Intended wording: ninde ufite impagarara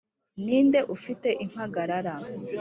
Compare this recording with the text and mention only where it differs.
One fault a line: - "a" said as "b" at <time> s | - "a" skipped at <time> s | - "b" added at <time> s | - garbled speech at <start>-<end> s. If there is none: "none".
none